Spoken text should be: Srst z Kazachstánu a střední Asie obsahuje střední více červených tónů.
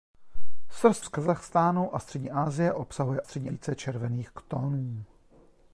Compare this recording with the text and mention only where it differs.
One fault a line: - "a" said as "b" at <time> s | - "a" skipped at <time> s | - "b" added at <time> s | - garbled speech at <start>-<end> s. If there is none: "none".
none